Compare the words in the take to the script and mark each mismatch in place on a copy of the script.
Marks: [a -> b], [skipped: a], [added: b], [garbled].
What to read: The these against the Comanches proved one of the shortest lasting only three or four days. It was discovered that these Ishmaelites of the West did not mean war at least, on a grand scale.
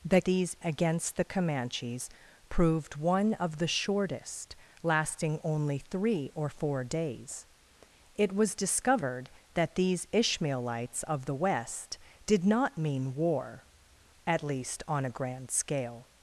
The these against the Comanches proved one of the shortest lasting only three or four days. It was discovered that these Ishmaelites of the West did not mean war at least, on a grand scale.